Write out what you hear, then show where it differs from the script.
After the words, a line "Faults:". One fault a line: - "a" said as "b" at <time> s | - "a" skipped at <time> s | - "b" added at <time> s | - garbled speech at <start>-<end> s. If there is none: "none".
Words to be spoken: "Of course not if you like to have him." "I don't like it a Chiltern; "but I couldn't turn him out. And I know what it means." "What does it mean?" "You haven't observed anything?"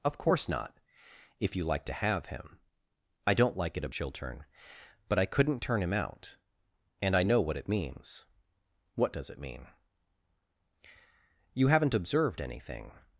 "Of course not if you like to have him." "I don't like it a Chiltern; "but I couldn't turn him out. And I know what it means." "What does it mean?" "You haven't observed anything?"
Faults:
none